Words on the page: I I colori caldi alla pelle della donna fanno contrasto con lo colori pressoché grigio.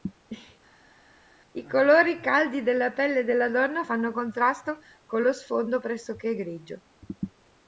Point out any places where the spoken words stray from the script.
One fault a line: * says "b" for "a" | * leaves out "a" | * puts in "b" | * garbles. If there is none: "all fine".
* leaves out "I"
* says "della" for "alla"
* says "sfondo" for "colori"